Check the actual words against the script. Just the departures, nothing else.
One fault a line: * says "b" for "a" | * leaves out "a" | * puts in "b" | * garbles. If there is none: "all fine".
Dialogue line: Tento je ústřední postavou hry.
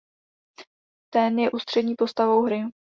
* says "Ten" for "Tento"